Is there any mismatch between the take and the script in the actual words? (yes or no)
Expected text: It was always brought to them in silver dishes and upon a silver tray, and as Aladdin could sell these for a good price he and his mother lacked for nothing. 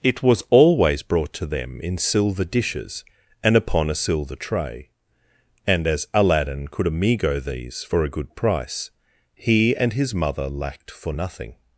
yes